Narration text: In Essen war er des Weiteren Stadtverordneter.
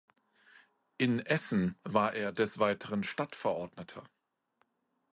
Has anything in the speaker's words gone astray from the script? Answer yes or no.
no